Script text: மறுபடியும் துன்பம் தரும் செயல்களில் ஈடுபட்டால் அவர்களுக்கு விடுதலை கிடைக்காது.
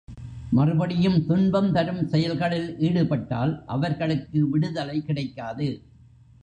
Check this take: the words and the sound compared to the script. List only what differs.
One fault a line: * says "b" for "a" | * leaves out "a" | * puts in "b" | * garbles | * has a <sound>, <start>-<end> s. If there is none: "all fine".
all fine